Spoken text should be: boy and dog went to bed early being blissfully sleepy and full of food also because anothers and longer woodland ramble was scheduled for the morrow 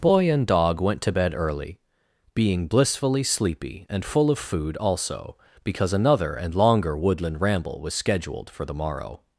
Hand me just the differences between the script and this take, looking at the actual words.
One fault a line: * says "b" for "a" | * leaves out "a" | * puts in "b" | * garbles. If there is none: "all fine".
* says "another" for "anothers"